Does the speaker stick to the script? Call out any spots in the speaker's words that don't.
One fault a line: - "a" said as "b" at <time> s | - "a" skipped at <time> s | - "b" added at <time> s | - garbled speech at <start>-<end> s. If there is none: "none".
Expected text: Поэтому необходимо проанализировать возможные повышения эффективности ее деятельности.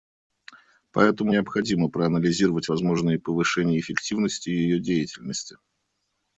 none